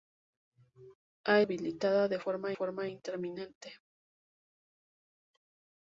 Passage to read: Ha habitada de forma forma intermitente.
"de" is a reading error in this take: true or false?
false